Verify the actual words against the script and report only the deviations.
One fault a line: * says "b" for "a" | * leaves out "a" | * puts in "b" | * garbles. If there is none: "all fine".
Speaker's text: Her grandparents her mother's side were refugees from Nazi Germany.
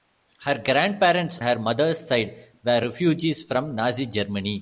all fine